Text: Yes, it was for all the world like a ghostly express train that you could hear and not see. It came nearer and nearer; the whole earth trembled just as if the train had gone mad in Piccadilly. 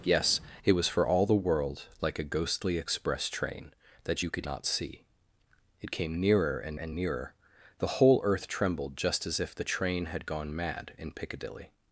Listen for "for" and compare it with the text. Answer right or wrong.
right